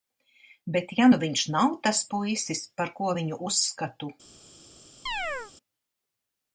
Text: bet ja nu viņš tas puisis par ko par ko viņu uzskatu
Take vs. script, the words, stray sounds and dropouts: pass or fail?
fail